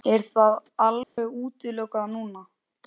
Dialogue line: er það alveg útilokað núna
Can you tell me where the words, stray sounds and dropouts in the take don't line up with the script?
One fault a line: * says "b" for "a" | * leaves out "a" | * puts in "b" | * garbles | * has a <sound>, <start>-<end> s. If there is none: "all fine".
* has a dropout, 1.0-1.2 s